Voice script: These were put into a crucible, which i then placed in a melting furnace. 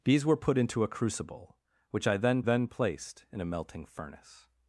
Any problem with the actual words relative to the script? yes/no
yes